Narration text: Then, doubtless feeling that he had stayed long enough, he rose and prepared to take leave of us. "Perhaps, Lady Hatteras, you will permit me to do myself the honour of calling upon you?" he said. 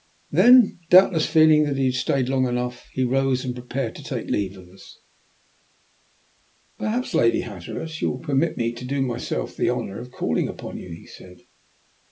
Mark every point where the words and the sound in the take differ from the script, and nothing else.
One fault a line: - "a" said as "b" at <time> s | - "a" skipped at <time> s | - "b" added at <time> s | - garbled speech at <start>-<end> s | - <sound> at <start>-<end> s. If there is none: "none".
none